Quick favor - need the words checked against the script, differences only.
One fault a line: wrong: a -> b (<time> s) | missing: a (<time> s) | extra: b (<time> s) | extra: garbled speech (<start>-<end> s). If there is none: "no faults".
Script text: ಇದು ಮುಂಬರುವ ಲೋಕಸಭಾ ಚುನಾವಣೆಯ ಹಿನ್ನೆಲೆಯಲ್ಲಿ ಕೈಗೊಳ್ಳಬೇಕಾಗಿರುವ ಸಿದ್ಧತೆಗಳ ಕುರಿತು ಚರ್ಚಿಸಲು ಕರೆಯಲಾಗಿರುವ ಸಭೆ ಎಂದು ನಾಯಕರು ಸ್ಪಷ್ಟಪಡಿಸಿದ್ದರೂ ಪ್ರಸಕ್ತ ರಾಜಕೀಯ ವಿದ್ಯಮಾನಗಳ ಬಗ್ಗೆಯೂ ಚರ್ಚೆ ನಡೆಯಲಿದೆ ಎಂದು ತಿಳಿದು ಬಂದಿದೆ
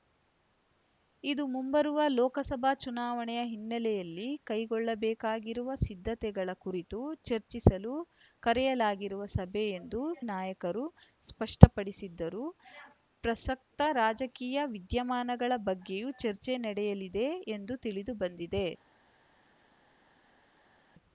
no faults